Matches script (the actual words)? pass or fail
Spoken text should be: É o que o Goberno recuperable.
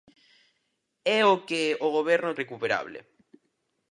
pass